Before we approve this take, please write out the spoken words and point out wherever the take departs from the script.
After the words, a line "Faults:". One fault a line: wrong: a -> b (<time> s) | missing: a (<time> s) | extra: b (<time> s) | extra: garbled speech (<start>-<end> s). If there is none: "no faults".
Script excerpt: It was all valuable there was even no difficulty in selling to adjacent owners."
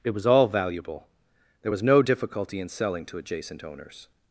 It was all valuable there was no difficulty in selling to adjacent owners."
Faults:
missing: even (1.8 s)